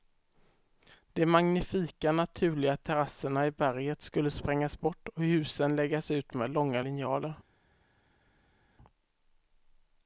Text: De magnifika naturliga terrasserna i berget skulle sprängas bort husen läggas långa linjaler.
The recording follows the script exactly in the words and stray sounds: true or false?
false